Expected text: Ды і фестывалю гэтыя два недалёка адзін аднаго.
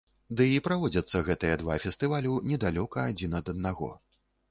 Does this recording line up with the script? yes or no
no